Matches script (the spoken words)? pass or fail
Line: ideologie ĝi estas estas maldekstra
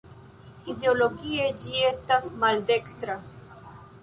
fail